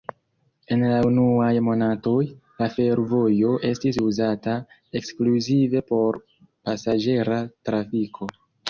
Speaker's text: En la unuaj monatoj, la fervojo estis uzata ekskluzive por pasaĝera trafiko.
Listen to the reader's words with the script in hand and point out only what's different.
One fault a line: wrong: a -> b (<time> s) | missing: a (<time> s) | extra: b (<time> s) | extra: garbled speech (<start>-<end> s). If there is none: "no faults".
no faults